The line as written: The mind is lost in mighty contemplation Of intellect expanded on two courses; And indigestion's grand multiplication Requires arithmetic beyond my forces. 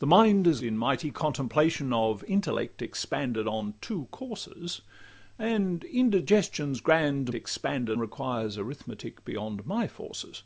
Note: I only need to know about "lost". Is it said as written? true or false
false